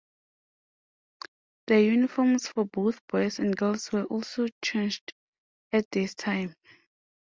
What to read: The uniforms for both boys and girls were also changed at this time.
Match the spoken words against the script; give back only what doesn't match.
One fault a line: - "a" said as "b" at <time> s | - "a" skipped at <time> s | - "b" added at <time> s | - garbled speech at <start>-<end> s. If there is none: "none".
none